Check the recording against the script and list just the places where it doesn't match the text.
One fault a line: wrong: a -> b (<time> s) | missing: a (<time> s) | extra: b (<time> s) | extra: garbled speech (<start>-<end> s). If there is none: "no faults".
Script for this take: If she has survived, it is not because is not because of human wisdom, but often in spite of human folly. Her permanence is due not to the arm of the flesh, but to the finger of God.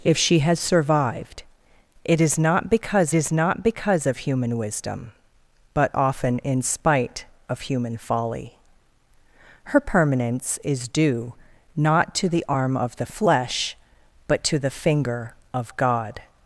no faults